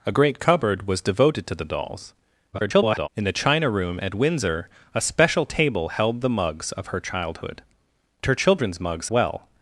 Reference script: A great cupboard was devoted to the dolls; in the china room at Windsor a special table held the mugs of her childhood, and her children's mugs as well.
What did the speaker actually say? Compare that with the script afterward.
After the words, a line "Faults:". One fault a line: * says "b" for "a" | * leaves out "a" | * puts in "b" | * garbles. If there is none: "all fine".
A great cupboard was devoted to the dolls; [garbled] in the china room at Windsor a special table held the mugs of her childhood, her children's mugs well.
Faults:
* garbles
* leaves out "and"
* leaves out "as"